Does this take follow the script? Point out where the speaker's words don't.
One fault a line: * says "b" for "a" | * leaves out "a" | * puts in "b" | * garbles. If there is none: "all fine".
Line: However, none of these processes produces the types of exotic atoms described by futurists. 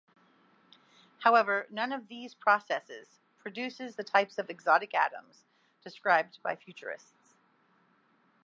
all fine